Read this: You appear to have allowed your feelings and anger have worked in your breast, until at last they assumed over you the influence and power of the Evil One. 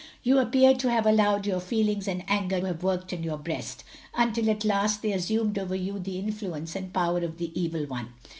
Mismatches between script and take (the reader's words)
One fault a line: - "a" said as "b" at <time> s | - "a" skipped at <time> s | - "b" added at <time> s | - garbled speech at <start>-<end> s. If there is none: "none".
none